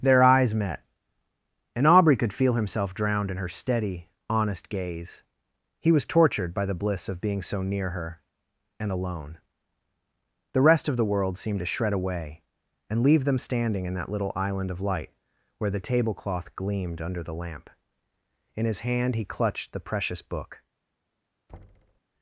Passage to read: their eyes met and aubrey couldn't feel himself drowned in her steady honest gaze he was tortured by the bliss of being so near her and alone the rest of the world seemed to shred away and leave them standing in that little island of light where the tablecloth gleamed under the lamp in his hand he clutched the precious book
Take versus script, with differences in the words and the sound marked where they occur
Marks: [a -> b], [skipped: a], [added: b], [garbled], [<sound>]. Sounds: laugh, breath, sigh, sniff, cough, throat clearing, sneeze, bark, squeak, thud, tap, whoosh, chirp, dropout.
their eyes met and aubrey [couldn't -> could] feel himself drowned in her steady honest gaze he was tortured by the bliss of being so near her and alone the rest of the world seemed to shred away and leave them standing in that little island of light where the tablecloth gleamed under the lamp in his hand he clutched the precious book [thud]